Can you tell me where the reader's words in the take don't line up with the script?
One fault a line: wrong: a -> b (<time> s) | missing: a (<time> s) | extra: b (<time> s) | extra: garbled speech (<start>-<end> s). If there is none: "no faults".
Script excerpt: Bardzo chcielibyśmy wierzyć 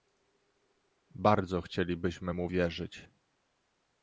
extra: mu (2.3 s)